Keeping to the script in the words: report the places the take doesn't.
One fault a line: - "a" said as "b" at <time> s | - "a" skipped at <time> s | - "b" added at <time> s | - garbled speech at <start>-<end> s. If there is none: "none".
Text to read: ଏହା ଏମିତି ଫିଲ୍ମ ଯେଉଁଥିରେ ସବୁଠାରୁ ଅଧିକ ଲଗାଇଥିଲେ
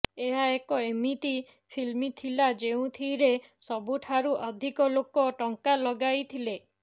- "ଏକ" added at 0.5 s
- "ଥିଲା" added at 2.1 s
- "ଲୋକ ଟଙ୍କା" added at 5.0 s